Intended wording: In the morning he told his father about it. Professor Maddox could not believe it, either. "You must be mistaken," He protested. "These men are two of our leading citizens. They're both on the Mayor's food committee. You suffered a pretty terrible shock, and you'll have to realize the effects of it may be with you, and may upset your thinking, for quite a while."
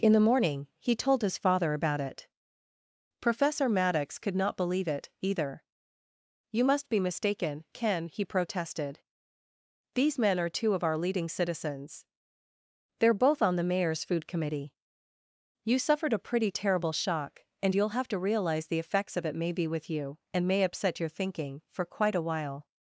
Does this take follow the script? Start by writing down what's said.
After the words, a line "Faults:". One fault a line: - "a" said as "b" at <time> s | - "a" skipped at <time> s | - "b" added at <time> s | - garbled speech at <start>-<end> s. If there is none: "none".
In the morning he told his father about it. Professor Maddox could not believe it, either. "You must be mistaken, Ken," he protested. "These men are two of our leading citizens. They're both on the Mayor's food committee. You suffered a pretty terrible shock, and you'll have to realize the effects of it may be with you, and may upset your thinking, for quite a while."
Faults:
- "Ken" added at 7.7 s